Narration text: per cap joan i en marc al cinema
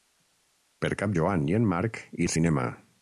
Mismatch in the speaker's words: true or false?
false